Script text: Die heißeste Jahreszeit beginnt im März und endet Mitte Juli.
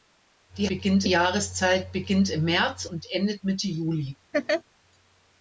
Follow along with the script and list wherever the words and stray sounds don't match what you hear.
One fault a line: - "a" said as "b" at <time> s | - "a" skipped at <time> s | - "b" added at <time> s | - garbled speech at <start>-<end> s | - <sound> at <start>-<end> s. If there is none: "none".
- "heißeste" said as "beginnt" at 0.7 s
- laugh at 4.3-4.6 s